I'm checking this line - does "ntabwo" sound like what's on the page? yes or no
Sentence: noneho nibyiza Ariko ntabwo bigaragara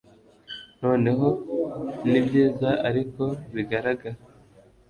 no